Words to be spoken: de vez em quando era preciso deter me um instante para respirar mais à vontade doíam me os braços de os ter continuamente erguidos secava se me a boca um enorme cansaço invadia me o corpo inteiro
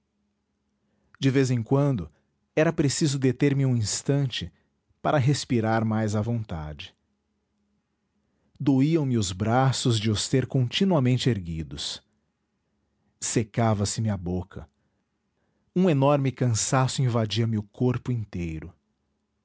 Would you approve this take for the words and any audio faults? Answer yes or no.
yes